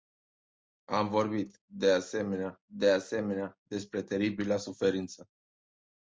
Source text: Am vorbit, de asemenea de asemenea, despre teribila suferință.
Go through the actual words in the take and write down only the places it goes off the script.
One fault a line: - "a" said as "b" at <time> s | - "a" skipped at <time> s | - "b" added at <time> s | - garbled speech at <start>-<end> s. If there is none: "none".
none